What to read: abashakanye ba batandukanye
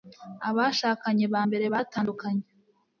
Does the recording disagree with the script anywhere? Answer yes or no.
yes